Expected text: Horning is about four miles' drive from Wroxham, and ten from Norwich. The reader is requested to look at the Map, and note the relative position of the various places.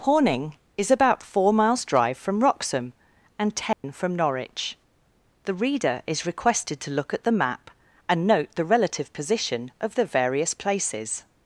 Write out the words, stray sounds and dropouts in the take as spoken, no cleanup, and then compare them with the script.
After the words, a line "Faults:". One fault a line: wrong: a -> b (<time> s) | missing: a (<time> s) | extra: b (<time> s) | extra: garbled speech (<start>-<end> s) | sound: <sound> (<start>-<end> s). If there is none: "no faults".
Horning is about four miles' drive from Wroxham, and ten from Norwich. The reader is requested to look at the Map, and note the relative position of the various places.
Faults:
sound: dropout (3.7-3.8 s)